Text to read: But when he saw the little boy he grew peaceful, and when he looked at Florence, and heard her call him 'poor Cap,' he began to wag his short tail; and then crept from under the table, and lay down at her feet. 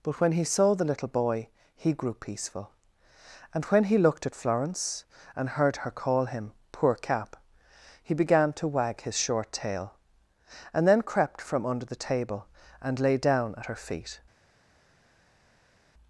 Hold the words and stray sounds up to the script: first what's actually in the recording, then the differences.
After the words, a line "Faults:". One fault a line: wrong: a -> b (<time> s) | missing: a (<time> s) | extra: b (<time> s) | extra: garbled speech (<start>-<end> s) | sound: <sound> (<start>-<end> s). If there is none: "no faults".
But when he saw the little boy he grew peaceful, and when he looked at Florence, and heard her call him 'poor Cap,' he began to wag his short tail; and then crept from under the table, and lay down at her feet.
Faults:
no faults